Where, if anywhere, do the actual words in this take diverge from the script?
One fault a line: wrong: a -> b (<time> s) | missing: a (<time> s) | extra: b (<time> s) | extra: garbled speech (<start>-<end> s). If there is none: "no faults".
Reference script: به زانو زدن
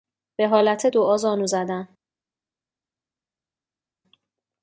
extra: حالت دعا (0.5 s)